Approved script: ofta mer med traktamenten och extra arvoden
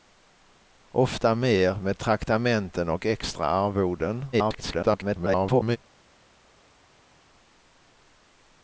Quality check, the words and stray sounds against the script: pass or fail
fail